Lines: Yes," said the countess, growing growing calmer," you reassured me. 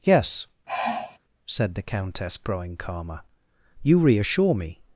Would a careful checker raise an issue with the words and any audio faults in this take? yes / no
yes